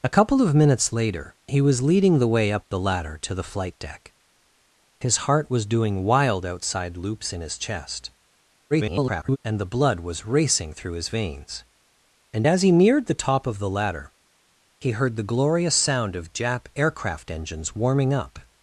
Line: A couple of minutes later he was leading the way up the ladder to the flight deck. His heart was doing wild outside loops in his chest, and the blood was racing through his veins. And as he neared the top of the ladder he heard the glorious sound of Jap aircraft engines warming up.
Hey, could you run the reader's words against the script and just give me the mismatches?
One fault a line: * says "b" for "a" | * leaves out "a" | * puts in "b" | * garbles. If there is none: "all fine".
* garbles